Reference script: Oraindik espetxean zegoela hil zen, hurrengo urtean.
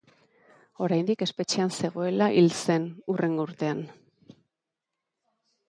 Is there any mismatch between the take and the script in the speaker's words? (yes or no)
no